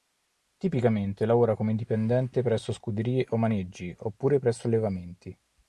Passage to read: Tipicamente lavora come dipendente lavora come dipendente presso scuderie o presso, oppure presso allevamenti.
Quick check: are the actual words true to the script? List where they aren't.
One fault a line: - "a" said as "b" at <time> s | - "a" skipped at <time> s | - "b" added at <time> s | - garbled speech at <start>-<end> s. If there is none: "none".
- "lavora come dipendente" skipped at 2.4 s
- "presso" said as "maneggi" at 3.4 s